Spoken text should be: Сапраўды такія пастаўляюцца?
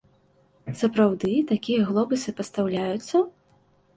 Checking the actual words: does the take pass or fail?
fail